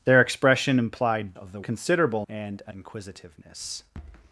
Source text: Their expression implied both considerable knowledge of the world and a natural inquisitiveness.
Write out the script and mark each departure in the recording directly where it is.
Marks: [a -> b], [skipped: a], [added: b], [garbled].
Their expression implied [skipped: both considerable knowledge] of the [world -> considerable] and a [skipped: natural] inquisitiveness.